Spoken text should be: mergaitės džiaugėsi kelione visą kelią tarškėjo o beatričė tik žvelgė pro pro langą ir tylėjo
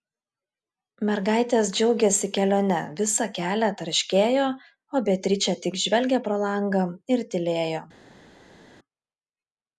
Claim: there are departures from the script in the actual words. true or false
true